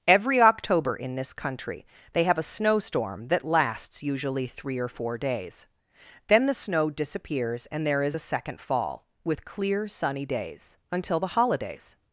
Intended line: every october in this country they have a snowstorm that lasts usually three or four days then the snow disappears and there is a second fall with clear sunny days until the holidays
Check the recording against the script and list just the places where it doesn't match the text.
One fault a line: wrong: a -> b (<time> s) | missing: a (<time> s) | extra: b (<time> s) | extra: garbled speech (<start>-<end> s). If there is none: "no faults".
no faults